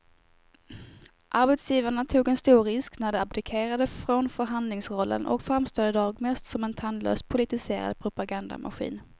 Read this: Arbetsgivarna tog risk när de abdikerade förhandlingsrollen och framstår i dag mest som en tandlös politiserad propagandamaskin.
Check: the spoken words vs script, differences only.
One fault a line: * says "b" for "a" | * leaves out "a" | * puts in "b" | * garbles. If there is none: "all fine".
* puts in "en stor"
* puts in "från"